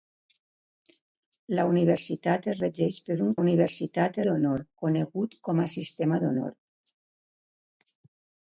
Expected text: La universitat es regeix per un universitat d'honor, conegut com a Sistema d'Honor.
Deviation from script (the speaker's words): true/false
false